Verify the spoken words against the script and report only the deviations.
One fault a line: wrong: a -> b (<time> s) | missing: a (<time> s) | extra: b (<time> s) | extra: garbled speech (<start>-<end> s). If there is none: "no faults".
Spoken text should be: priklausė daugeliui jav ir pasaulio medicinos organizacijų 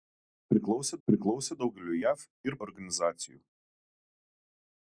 extra: priklausė (1.1 s)
missing: pasaulio medicinos (2.6 s)